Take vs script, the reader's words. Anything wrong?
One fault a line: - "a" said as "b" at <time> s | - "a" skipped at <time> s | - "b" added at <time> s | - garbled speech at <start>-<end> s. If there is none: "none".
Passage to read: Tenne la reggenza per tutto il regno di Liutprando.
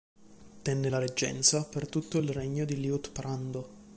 none